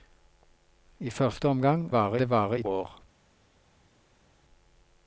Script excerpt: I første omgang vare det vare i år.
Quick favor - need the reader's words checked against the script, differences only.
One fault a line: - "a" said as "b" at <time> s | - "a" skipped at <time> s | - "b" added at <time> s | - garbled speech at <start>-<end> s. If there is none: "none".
none